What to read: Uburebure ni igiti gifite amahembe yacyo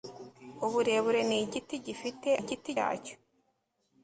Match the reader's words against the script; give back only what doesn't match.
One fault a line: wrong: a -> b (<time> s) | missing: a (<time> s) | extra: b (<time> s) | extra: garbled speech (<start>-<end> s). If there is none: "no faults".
wrong: amahembe -> igiti (2.4 s)